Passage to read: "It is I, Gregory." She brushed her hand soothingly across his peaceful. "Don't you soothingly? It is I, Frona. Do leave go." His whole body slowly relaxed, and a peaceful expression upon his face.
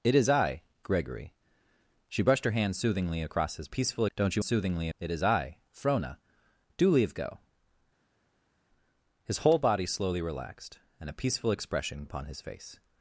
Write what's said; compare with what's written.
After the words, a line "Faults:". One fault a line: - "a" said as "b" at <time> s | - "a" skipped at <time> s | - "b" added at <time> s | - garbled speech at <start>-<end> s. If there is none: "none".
"It is I, Gregory." She brushed her hand soothingly across his peaceful. "Don't you soothingly? It is I, Frona. Do leave go." His whole body slowly relaxed, and a peaceful expression upon his face.
Faults:
none